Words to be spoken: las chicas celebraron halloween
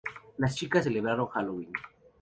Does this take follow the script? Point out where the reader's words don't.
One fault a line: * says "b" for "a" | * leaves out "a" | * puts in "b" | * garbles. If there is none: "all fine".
all fine